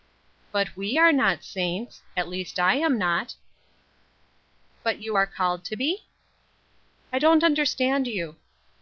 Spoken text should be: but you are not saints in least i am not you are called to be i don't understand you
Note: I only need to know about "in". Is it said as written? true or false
false